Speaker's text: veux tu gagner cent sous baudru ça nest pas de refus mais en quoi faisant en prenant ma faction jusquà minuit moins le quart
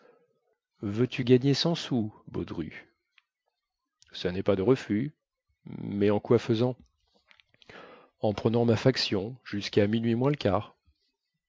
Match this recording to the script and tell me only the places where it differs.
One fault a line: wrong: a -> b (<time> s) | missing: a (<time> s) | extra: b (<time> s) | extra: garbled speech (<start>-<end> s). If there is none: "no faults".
no faults